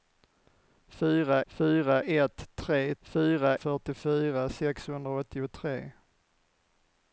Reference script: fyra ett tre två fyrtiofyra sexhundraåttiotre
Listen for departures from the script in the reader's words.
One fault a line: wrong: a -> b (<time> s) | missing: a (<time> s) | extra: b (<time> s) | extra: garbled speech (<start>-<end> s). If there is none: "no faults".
extra: fyra (1.5 s)
wrong: två -> fyra (3.0 s)